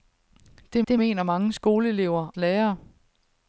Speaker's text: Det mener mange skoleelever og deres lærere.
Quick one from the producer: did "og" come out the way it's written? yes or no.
no